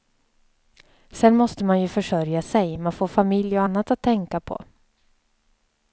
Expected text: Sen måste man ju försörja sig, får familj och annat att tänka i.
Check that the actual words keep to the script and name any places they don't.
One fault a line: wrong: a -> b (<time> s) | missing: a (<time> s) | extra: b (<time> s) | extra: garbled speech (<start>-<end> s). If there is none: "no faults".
extra: man (2.7 s)
wrong: i -> på (4.4 s)